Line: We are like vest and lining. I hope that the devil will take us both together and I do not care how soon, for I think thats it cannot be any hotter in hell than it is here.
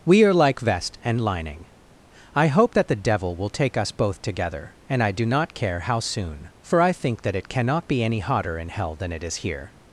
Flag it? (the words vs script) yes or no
yes